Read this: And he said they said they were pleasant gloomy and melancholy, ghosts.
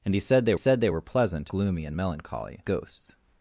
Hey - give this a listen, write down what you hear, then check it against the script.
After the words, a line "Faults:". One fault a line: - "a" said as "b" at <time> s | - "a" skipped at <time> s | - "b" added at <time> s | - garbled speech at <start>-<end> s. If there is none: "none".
And he said they said they were pleasant gloomy and melancholy, ghosts.
Faults:
none